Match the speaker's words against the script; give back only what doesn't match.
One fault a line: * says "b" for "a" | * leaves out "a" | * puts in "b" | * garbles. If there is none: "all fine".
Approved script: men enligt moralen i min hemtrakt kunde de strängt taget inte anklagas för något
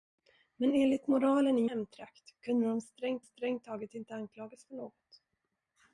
* leaves out "min"
* puts in "strängt"